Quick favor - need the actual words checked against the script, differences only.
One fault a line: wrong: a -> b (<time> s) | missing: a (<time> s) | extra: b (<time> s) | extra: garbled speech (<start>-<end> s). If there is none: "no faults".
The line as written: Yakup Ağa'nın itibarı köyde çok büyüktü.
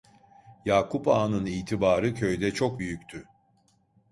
no faults